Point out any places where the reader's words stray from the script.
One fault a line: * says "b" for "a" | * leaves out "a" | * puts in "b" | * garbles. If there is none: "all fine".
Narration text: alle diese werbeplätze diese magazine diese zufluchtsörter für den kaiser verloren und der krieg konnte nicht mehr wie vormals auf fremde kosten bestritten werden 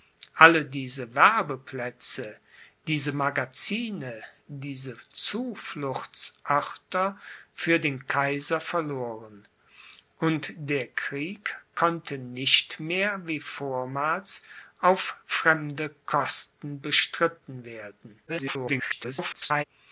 * garbles